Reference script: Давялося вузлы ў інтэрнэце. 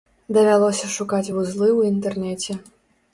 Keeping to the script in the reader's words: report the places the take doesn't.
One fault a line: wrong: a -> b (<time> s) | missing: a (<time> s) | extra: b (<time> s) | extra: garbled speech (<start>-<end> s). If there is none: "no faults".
extra: шукаць (0.9 s)